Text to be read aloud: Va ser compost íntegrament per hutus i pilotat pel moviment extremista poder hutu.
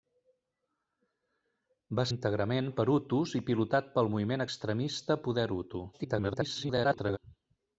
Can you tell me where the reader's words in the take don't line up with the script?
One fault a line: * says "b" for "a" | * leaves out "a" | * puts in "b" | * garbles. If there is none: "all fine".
* leaves out "ser compost"
* garbles